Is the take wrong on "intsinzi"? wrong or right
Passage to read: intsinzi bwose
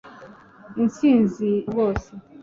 right